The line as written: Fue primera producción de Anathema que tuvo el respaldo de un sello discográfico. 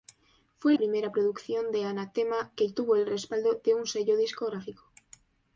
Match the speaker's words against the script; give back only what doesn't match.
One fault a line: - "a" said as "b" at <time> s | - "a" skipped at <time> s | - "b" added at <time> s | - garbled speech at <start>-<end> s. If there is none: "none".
none